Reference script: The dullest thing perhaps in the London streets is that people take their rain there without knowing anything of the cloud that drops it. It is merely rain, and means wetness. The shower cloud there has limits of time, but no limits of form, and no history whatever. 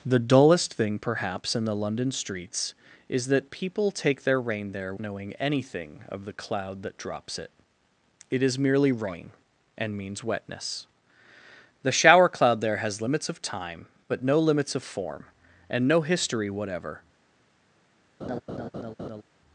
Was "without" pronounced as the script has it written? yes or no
no